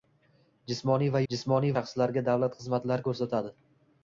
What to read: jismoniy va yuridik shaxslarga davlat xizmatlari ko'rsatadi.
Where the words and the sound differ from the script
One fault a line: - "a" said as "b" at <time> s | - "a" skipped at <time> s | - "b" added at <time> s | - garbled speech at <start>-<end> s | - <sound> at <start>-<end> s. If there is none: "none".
- "yuridik" said as "jismoniy" at 1.3 s